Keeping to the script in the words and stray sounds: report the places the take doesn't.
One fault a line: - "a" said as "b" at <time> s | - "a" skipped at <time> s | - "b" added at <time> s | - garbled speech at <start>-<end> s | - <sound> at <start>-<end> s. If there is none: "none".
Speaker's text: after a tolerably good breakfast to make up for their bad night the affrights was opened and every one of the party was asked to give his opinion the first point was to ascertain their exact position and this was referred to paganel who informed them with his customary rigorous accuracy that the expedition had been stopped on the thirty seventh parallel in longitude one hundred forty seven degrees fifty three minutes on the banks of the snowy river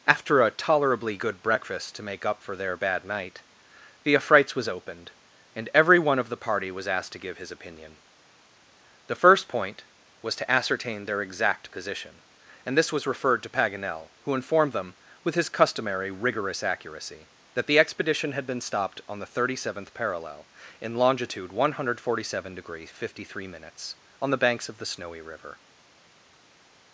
none